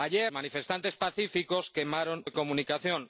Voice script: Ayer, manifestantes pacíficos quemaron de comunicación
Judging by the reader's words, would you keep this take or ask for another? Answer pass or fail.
pass